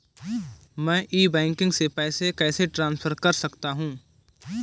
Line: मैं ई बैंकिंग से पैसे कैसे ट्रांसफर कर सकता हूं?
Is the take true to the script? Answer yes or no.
yes